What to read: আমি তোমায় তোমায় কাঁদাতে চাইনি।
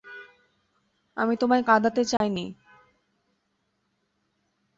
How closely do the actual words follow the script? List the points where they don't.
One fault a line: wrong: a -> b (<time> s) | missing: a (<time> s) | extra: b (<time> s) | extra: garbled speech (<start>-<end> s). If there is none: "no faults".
missing: তোমায় (1.6 s)